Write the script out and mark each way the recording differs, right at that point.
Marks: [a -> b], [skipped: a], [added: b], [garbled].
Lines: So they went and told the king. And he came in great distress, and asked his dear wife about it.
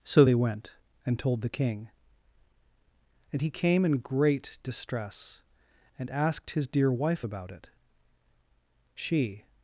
So they went and told the king. And he came in great distress, and asked his dear wife about it. [added: She]